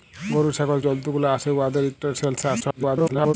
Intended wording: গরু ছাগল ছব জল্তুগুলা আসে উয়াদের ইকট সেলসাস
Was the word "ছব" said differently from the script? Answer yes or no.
yes